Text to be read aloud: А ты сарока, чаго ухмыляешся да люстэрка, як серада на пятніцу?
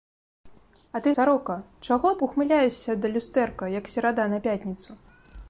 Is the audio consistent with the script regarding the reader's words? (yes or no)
yes